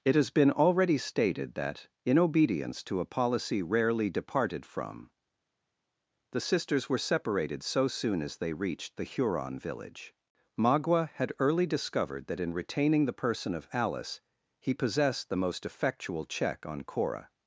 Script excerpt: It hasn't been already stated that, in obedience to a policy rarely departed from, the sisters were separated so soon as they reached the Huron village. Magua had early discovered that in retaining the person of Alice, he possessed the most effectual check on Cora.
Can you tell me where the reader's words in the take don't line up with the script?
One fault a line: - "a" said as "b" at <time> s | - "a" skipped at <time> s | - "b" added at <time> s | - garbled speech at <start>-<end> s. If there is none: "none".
- "hasn't" said as "has" at 0.1 s